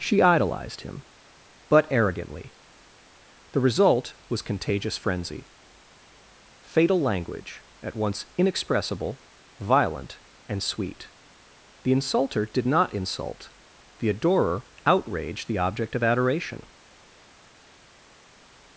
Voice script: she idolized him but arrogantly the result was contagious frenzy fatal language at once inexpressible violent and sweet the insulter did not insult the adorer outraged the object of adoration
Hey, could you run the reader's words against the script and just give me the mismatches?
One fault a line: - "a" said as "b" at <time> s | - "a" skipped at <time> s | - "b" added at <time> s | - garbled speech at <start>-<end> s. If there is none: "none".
none